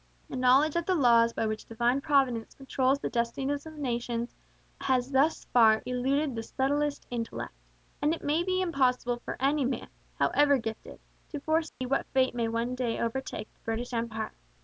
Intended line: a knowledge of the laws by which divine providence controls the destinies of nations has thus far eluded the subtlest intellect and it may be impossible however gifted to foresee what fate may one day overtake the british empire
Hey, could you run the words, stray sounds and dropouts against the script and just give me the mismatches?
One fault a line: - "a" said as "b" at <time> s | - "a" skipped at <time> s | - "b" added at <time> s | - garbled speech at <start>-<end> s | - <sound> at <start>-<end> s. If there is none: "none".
- "for any man" added at 9.2 s
- dropout at 11.7-11.8 s